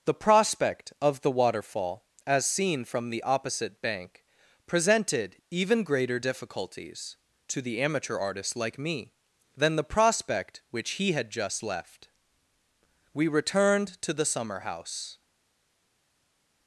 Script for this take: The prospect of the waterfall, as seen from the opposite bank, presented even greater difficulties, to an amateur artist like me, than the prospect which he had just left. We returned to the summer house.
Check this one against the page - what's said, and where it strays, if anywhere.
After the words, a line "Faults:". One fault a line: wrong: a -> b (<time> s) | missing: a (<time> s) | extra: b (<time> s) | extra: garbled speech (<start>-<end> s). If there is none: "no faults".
The prospect of the waterfall, as seen from the opposite bank, presented even greater difficulties, to the amateur artist like me, than the prospect which he had just left. We returned to the summer house.
Faults:
wrong: an -> the (7.6 s)